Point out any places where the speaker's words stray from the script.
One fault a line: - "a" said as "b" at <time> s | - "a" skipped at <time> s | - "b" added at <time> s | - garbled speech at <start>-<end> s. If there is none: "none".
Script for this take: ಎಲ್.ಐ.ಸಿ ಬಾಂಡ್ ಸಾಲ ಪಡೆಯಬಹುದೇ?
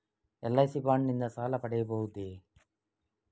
- "ನಿಂದ" added at 1.1 s